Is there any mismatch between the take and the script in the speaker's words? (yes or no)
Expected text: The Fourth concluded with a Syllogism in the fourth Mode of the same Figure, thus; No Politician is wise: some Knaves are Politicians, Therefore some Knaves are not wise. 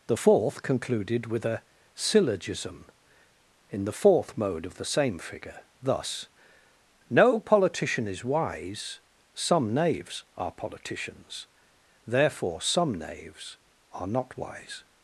no